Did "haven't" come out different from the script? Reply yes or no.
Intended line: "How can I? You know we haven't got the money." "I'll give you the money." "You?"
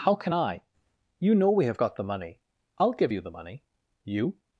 yes